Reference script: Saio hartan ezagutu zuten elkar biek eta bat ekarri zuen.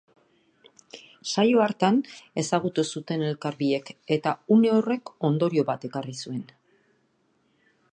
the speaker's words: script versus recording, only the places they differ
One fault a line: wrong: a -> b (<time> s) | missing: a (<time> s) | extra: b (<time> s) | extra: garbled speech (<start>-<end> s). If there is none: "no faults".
extra: une horrek ondorio (4.6 s)